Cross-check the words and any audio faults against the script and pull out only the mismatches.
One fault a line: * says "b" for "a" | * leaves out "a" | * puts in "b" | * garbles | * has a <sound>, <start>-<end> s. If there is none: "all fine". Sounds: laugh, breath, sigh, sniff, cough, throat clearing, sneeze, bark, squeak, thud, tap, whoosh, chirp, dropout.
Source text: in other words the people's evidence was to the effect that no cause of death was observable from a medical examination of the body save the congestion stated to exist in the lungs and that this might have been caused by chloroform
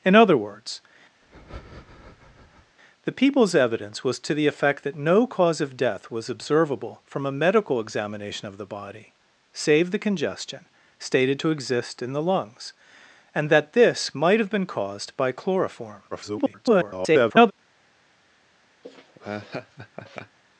* has a breath, 1.2-2.8 s
* garbles
* has a laugh, 18.8-20.4 s